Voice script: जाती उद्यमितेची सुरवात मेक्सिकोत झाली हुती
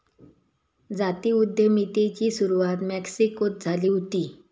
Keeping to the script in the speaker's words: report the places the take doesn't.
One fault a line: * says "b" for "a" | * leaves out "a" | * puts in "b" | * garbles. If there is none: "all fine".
all fine